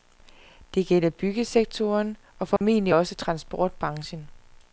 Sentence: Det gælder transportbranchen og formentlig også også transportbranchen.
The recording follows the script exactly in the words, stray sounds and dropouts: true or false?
false